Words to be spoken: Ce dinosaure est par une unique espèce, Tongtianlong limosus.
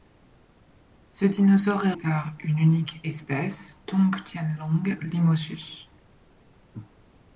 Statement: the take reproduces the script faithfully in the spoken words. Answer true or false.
true